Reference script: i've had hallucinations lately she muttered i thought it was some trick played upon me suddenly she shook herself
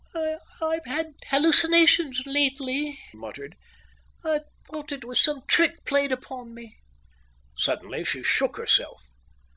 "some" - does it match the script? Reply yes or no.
yes